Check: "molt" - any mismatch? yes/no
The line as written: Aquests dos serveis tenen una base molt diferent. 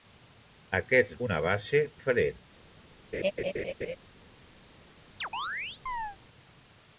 yes